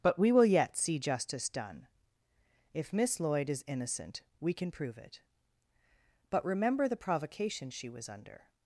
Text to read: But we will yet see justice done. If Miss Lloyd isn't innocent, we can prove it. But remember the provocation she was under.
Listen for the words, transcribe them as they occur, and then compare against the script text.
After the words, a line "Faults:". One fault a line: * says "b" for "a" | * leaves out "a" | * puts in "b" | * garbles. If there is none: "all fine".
But we will yet see justice done. If Miss Lloyd is innocent, we can prove it. But remember the provocation she was under.
Faults:
* says "is" for "isn't"